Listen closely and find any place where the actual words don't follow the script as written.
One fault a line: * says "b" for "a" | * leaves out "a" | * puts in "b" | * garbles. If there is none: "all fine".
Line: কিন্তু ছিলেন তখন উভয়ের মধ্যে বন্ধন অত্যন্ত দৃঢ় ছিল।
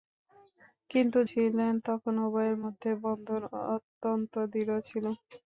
all fine